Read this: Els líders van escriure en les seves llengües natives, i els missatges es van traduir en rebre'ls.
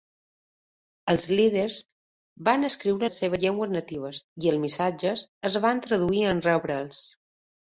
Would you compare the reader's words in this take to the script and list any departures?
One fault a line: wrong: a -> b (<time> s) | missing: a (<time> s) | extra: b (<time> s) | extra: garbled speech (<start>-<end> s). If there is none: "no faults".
missing: en (3.1 s)